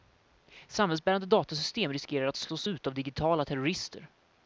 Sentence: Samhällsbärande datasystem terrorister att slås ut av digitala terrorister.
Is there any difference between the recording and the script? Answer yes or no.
yes